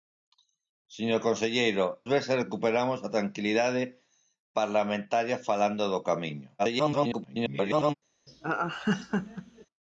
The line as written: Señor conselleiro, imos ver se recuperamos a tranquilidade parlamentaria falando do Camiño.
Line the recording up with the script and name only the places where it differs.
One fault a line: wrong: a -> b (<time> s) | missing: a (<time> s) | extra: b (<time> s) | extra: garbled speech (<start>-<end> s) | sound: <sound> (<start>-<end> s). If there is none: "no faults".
missing: imos (1.9 s)
extra: garbled speech (6.6-7.9 s)
sound: laugh (8.3-9.7 s)